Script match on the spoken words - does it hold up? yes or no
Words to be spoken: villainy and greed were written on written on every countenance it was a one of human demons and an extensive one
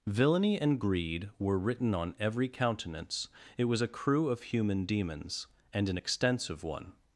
no